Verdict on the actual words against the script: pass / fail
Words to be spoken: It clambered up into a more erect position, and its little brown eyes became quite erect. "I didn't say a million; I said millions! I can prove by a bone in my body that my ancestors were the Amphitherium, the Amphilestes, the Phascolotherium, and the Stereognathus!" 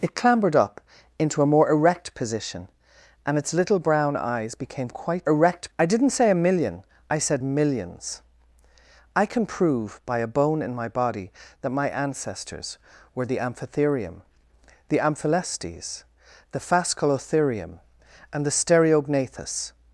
pass